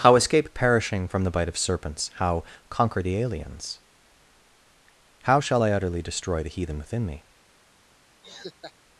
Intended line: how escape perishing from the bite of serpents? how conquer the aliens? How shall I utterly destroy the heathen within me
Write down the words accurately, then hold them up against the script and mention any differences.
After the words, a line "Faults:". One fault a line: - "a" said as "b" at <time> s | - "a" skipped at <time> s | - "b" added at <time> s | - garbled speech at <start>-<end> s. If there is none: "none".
how escape perishing from the bite of serpents? how conquer the aliens? How shall I utterly destroy the heathen within me
Faults:
none